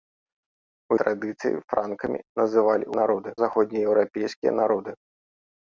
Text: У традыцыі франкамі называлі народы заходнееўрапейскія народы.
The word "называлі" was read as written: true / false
true